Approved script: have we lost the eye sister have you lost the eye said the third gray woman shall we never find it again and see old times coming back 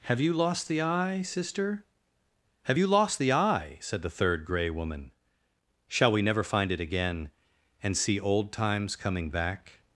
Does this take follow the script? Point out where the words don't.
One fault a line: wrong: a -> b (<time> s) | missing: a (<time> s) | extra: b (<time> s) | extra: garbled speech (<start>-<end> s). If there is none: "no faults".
wrong: we -> you (0.2 s)